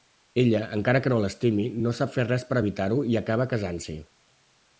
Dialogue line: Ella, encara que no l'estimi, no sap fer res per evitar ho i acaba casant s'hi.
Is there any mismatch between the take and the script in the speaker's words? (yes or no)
no